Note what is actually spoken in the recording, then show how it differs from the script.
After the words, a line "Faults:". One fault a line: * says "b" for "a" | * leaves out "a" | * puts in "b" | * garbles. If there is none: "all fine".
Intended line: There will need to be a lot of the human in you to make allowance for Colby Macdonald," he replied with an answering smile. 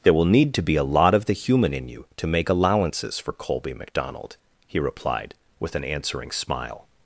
There will need to be a lot of the human in you to make allowances for Colby Macdonald," he replied with an answering smile.
Faults:
* says "allowances" for "allowance"